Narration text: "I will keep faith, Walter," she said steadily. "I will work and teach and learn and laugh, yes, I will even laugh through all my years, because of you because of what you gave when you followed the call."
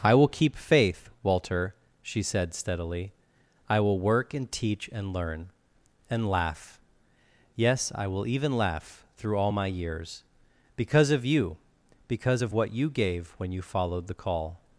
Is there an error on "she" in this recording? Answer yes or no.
no